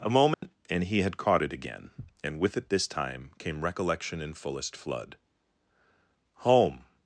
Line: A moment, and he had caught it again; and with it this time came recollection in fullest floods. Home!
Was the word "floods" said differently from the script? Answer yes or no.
yes